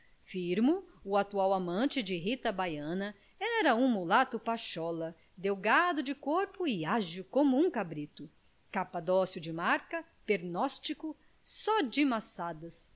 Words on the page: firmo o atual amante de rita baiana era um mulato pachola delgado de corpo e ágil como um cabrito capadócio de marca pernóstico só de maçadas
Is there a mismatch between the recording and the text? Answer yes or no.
no